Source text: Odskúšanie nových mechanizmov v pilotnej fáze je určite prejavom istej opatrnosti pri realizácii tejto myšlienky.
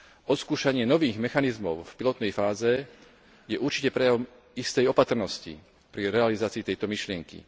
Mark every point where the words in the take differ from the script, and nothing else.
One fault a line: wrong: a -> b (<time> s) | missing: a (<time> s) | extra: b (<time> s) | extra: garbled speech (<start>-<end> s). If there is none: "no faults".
no faults